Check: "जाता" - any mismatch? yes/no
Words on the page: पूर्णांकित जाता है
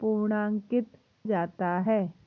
no